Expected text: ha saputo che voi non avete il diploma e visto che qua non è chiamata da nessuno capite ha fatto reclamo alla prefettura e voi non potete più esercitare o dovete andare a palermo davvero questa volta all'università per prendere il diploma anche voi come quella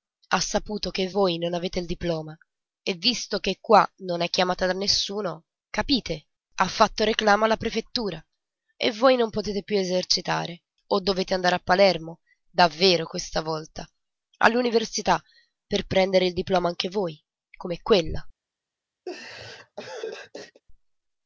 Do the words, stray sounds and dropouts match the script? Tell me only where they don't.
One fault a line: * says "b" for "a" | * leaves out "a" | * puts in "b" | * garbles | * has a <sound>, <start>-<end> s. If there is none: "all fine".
* has a laugh, 19.1-20.6 s